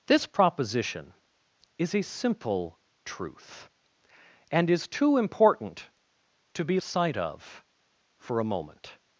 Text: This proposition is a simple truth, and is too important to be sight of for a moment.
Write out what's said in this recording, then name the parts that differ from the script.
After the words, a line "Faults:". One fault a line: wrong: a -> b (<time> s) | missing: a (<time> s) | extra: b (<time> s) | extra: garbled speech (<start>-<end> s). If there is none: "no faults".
This proposition is a simple truth, and is too important to be sight of for a moment.
Faults:
no faults